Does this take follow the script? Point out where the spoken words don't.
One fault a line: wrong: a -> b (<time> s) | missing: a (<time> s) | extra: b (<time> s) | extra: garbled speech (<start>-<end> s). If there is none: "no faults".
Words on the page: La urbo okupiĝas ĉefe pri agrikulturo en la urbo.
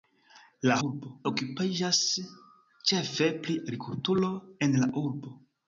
no faults